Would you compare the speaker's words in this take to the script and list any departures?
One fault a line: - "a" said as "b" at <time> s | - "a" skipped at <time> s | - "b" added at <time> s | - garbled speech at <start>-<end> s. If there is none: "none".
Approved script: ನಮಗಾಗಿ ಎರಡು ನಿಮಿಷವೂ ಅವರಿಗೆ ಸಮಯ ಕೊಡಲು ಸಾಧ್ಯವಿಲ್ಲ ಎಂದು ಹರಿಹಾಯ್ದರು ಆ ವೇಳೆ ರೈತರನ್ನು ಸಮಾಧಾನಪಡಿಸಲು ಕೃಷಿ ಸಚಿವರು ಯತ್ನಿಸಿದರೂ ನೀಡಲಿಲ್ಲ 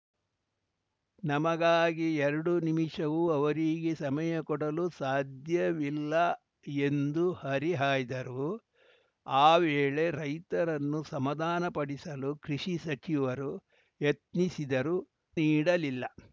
none